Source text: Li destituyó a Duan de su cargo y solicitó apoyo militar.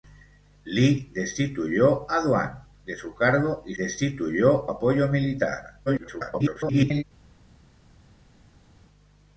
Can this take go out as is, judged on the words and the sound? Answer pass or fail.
fail